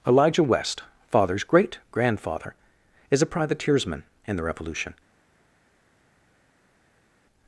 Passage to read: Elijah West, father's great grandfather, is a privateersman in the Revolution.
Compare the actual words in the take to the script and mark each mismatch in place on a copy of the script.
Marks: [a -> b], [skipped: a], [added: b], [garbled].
Elijah West, father's great grandfather, is a privateersman in the Revolution.